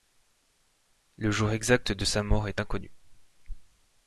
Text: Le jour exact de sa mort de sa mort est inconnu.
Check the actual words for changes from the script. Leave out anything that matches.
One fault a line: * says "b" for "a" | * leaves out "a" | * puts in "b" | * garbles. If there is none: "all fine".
* leaves out "de sa mort"